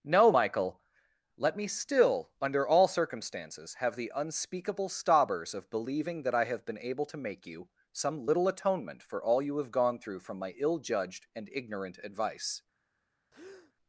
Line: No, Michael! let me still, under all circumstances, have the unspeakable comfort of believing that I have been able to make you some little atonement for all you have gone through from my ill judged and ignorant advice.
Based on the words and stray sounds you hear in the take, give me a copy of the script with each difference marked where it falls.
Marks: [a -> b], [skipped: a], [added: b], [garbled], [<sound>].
No, Michael! let me still, under all circumstances, have the unspeakable [comfort -> stobbers] of believing that I have been able to make you some little atonement for all you have gone through from my ill judged and ignorant advice. [breath]